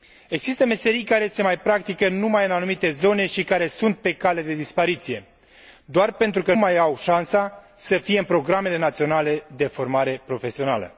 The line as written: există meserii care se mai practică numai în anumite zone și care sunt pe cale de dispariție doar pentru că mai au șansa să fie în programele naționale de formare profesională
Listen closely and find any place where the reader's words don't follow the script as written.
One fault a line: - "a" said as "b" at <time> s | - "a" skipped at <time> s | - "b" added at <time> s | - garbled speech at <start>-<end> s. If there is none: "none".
none